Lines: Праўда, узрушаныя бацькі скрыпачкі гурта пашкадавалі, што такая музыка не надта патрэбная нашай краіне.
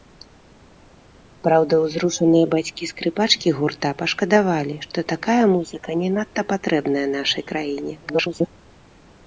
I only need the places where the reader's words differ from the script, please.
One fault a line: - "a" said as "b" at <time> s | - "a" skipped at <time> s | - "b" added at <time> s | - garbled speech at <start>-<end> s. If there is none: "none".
- garbled speech at 8.0-8.5 s